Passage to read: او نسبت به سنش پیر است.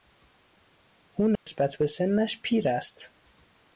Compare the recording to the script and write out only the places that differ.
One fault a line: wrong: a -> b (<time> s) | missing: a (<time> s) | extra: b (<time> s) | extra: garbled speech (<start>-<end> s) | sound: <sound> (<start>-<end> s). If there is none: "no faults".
sound: dropout (1.4-1.5 s)